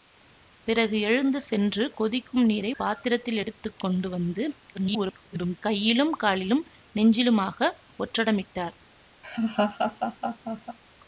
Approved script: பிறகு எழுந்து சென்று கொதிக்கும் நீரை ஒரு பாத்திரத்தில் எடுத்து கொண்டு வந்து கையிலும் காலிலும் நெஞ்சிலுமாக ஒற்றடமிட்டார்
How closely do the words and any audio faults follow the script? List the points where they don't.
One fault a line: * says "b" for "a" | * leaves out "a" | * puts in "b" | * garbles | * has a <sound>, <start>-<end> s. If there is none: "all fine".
* leaves out "ஒரு"
* garbles
* has a laugh, 9.2-10.8 s